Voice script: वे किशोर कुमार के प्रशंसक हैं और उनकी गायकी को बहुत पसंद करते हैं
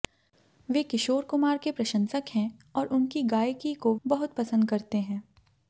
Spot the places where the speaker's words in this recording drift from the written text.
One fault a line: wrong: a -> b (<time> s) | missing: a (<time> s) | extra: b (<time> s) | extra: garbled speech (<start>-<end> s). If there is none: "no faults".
no faults